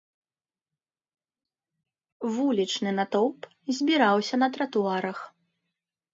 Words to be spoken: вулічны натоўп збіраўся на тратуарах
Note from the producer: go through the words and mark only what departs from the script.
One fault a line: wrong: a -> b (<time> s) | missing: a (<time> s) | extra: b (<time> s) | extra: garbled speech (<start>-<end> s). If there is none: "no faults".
no faults